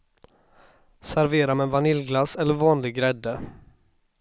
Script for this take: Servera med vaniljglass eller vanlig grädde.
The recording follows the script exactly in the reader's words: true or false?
true